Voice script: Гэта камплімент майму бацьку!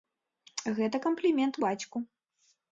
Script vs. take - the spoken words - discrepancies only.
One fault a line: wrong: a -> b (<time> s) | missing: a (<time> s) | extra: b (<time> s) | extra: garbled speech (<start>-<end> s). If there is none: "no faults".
missing: майму (1.6 s)